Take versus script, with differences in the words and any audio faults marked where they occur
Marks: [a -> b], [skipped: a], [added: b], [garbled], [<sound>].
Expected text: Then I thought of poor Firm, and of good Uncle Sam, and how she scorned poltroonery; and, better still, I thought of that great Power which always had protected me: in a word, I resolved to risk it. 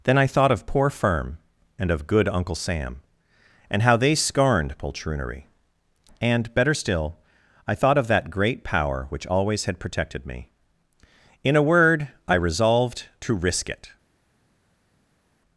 Then I thought of poor Firm, and of good Uncle Sam, and how [she -> they] scorned poltroonery; and, better still, I thought of that great Power which always had protected me: in a word, I resolved to risk it.